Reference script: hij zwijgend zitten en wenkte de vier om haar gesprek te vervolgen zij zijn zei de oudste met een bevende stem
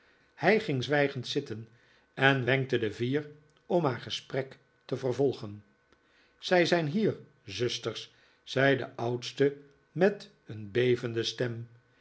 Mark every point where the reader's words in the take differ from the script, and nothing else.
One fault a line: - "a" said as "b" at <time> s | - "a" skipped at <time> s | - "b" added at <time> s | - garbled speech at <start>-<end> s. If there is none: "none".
- "ging" added at 0.6 s
- "hier zusters" added at 6.9 s